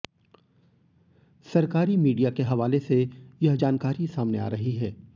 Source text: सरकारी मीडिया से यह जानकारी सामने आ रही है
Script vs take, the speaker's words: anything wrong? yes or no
yes